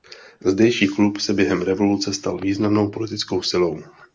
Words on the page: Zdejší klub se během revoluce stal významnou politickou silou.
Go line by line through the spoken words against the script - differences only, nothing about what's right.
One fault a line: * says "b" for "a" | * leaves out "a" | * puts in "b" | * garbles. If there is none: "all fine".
all fine